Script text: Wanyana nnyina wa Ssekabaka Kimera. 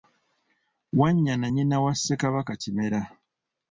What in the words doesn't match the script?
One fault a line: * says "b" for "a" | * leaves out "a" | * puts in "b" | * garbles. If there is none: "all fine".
all fine